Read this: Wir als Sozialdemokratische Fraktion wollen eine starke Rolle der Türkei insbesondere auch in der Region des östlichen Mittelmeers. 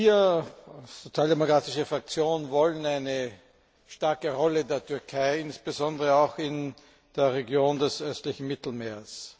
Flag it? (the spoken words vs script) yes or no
no